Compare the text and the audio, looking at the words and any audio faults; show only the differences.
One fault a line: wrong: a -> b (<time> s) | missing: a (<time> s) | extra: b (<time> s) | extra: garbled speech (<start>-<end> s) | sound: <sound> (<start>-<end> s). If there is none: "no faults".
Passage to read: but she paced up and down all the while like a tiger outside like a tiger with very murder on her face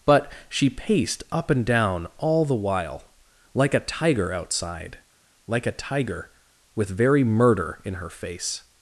wrong: on -> in (7.8 s)